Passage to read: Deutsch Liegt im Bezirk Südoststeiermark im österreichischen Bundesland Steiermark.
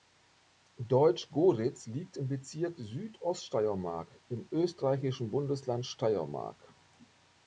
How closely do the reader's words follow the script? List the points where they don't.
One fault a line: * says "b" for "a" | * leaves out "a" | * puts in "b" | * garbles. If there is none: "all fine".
* puts in "Goritz"